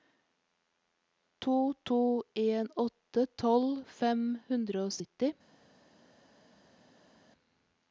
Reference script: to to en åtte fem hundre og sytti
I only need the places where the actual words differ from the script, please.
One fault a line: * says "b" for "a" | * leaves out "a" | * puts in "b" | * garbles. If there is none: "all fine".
* puts in "tolv"